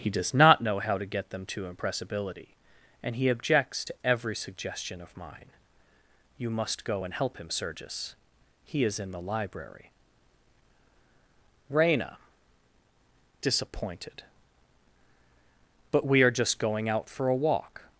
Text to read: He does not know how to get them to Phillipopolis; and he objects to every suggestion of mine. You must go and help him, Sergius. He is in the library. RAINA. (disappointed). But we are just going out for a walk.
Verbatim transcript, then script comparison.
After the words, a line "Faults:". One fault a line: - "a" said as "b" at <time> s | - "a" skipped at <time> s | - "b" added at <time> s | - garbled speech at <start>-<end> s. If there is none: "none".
He does not know how to get them to Impressibility; and he objects to every suggestion of mine. You must go and help him, Sergius. He is in the library. RAINA. (disappointed). But we are just going out for a walk.
Faults:
- "Phillipopolis" said as "Impressibility" at 1.7 s